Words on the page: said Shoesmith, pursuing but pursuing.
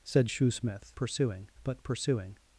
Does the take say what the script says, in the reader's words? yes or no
yes